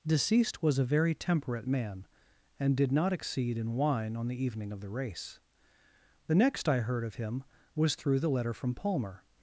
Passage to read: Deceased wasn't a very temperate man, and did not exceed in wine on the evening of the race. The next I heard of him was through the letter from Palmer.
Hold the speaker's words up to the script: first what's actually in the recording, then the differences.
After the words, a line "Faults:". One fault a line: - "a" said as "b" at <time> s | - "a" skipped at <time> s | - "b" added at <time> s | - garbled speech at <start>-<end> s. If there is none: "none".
Deceased was a very temperate man, and did not exceed in wine on the evening of the race. The next I heard of him was through the letter from Palmer.
Faults:
- "wasn't" said as "was" at 0.6 s